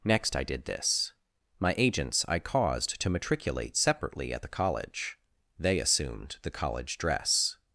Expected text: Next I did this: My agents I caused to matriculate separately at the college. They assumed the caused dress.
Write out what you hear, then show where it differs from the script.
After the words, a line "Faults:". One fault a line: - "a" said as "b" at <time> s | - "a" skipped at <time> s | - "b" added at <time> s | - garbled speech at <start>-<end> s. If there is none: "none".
Next I did this: My agents I caused to matriculate separately at the college. They assumed the college dress.
Faults:
- "caused" said as "college" at 6.5 s